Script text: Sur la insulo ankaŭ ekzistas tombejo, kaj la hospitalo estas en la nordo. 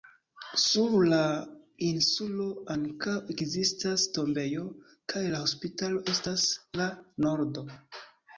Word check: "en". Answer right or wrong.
wrong